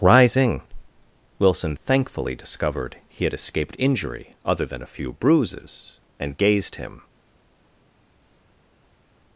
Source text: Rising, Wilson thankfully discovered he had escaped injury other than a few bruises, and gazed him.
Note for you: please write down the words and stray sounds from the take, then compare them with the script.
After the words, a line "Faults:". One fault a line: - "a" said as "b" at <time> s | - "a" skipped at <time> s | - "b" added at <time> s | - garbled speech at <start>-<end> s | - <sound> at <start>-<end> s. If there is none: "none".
Rising, Wilson thankfully discovered he had escaped injury other than a few bruises, and gazed him.
Faults:
none